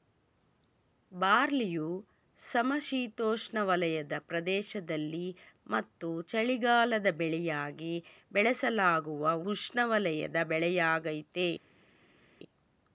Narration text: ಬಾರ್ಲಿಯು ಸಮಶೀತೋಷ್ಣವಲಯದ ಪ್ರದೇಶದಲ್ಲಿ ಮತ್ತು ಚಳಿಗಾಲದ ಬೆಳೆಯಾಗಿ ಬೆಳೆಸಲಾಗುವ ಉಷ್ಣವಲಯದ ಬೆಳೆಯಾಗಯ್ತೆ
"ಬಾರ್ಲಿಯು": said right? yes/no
yes